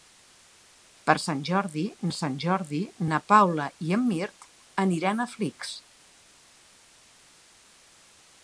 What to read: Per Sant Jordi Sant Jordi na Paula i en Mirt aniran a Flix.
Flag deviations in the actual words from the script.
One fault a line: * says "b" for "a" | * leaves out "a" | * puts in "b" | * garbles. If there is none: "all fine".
all fine